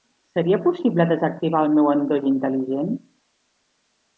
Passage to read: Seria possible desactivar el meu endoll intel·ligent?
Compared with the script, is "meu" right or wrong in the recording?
right